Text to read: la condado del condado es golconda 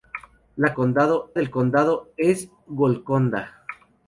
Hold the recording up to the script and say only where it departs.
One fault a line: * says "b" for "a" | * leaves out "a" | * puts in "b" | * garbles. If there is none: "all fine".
all fine